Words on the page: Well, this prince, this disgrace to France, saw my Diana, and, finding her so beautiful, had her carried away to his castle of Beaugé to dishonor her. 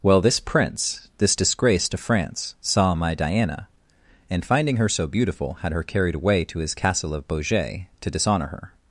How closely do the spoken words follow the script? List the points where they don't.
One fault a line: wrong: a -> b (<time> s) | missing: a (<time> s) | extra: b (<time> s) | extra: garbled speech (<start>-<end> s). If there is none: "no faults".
no faults